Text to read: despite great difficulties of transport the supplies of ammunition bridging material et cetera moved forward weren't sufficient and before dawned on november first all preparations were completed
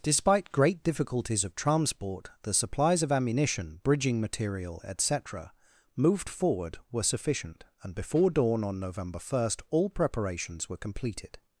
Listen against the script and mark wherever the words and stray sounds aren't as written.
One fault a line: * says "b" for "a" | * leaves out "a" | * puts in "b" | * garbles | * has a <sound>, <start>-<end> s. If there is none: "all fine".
* says "were" for "weren't"
* says "dawn" for "dawned"